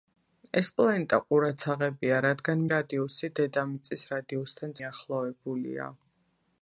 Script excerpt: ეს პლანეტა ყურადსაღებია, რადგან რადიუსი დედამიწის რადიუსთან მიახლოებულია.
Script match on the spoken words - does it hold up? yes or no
yes